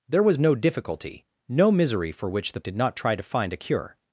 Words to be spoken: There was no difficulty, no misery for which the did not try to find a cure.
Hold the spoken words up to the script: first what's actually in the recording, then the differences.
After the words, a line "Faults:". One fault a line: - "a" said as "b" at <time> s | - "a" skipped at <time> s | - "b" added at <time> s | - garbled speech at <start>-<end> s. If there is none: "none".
There was no difficulty, no misery for which the did not try to find a cure.
Faults:
none